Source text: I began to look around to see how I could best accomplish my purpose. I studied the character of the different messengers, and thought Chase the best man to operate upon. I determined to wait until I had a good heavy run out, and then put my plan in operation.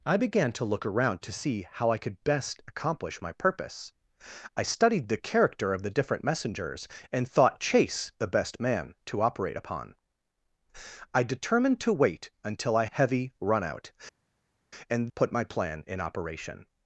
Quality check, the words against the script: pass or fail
fail